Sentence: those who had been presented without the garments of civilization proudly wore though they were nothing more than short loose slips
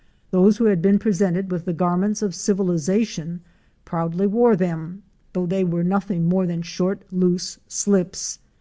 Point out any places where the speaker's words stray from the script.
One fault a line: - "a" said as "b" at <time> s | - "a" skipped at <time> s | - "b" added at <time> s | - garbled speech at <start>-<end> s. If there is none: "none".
- "without" said as "with" at 1.5 s
- "them" added at 4.5 s